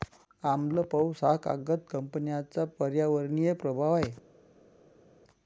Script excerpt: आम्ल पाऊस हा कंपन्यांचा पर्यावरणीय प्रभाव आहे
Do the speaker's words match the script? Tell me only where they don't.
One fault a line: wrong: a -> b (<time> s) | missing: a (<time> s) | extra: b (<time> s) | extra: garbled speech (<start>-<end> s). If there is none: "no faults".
extra: कागद (1.4 s)